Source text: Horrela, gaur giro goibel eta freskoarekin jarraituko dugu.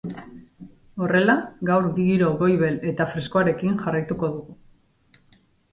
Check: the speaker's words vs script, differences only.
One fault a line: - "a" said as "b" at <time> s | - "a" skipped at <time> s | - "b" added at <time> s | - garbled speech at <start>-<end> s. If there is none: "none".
none